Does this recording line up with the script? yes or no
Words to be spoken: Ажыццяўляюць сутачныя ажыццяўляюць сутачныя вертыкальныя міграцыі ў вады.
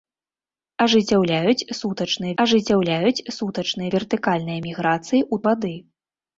yes